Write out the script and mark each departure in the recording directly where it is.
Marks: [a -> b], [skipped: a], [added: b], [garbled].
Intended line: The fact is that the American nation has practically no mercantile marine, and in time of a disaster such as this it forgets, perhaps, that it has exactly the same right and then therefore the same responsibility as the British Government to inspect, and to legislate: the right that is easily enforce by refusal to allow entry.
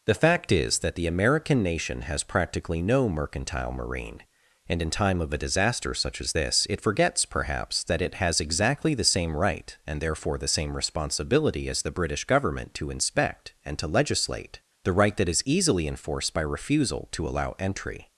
The fact is that the American nation has practically no mercantile marine, and in time of a disaster such as this it forgets, perhaps, that it has exactly the same right and [skipped: then] therefore the same responsibility as the British Government to inspect, and to legislate: the right that is easily [enforce -> enforced] by refusal to allow entry.